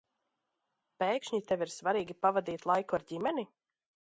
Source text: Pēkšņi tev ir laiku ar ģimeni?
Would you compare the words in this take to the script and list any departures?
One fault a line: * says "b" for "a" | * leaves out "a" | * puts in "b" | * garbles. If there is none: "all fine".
* puts in "svarīgi pavadīt"